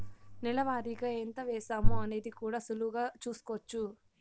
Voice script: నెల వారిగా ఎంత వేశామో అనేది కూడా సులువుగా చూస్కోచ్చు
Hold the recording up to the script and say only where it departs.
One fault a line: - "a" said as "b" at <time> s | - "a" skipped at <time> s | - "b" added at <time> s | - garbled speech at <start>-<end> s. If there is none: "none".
none